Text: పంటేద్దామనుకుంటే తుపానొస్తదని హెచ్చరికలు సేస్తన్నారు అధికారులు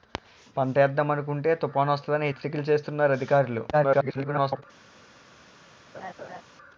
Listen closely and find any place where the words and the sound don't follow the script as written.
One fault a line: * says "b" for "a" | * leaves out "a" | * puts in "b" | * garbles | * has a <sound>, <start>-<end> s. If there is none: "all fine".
* garbles
* has a laugh, 5.9-6.4 s